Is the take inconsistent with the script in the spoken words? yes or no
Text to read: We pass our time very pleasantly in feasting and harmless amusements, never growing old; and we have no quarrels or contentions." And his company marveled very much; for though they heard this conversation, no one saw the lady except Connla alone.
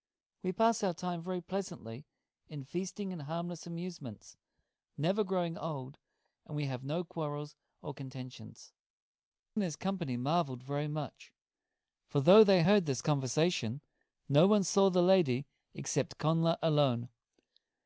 no